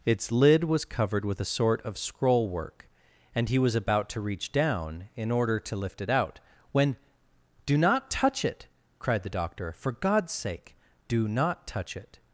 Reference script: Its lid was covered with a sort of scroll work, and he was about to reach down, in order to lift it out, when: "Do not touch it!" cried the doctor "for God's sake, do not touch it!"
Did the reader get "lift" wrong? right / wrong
right